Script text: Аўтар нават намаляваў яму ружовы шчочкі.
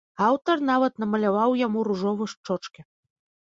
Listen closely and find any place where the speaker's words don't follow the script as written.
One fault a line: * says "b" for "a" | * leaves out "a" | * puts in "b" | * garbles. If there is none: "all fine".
all fine